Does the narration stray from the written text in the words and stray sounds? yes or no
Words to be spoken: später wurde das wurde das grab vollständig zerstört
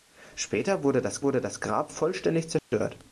yes